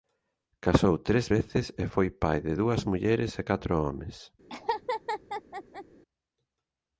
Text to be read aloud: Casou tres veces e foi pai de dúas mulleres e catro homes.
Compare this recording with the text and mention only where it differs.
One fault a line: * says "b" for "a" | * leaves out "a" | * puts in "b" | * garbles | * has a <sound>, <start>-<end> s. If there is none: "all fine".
* has a laugh, 4.5-5.8 s